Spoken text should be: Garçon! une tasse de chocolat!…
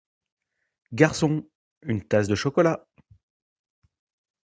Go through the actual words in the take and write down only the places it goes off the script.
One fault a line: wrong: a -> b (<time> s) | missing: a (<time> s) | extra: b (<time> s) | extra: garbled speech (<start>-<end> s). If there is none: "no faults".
no faults